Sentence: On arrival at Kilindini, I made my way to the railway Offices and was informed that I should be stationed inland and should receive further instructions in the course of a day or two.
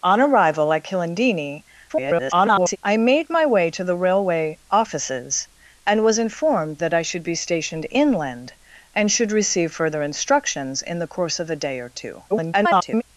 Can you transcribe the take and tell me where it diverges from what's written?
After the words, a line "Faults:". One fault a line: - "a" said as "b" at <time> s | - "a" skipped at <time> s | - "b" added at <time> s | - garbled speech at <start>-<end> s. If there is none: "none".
On arrival at Kilindini, [garbled] I made my way to the railway Offices and was informed that I should be stationed inland and should receive further instructions in the course of a day or two. [garbled]
Faults:
- garbled speech at 1.9-2.8 s
- garbled speech at 12.3-13.0 s